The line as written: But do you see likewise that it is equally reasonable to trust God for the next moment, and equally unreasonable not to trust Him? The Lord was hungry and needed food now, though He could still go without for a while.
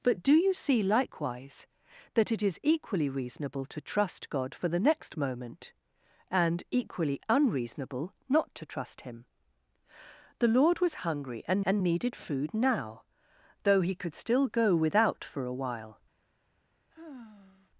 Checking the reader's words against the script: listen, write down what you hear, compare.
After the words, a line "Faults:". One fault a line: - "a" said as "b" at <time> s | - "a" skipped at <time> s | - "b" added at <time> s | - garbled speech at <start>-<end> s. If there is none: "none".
But do you see likewise that it is equally reasonable to trust God for the next moment, and equally unreasonable not to trust Him? The Lord was hungry and and needed food now, though He could still go without for a while.
Faults:
- "and" added at 11.6 s